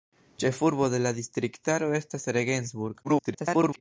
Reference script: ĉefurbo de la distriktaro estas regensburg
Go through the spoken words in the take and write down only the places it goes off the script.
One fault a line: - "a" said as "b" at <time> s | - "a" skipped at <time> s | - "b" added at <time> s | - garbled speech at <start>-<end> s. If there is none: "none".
- garbled speech at 3.0-3.8 s